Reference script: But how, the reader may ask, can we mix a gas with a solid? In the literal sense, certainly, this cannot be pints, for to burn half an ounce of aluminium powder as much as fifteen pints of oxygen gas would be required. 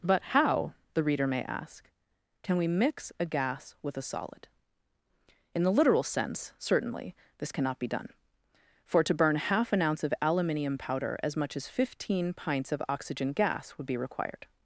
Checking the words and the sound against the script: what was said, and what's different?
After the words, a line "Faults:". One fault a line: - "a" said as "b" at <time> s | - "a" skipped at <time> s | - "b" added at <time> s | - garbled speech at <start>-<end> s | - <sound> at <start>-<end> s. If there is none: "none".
But how, the reader may ask, can we mix a gas with a solid? In the literal sense, certainly, this cannot be done, for to burn half an ounce of aluminium powder as much as fifteen pints of oxygen gas would be required.
Faults:
- "pints" said as "done" at 7.9 s